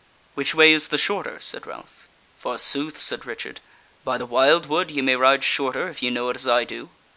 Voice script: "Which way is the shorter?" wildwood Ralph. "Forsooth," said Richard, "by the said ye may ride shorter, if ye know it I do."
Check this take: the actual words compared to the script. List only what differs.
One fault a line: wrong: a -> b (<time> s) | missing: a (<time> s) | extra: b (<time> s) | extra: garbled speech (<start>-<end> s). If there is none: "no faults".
wrong: wildwood -> said (1.4 s)
wrong: said -> wildwood (4.2 s)
extra: as (6.4 s)